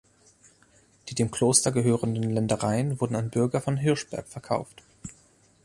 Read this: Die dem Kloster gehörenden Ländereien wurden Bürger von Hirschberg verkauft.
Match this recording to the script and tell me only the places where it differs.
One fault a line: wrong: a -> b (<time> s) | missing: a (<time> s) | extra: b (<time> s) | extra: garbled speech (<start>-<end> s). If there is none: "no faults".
extra: an (3.2 s)